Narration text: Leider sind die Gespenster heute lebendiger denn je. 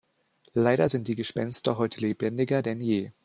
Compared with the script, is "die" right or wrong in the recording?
right